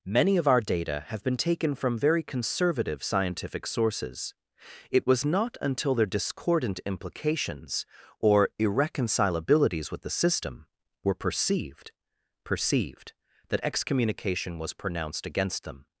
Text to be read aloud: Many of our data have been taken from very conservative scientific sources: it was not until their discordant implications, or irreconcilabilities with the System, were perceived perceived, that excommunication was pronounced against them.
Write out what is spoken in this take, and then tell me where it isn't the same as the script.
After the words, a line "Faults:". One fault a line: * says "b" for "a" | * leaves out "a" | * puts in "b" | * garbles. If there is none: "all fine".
Many of our data have been taken from very conservative scientific sources: it was not until their discordant implications, or irreconcilabilities with the System, were perceived perceived, that excommunication was pronounced against them.
Faults:
all fine